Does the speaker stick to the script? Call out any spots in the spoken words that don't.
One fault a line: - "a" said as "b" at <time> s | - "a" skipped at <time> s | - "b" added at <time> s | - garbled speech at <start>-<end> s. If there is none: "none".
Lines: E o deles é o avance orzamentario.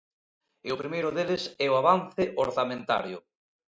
- "primeiro" added at 0.8 s